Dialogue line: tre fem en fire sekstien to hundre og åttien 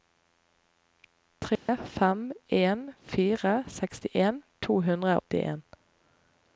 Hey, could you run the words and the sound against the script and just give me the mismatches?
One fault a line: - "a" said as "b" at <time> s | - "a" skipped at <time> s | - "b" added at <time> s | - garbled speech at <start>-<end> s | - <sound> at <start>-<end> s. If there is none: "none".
- dropout at 1.6-1.7 s
- "og" skipped at 5.2 s